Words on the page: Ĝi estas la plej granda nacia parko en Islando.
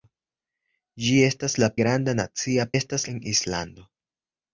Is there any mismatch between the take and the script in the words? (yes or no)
yes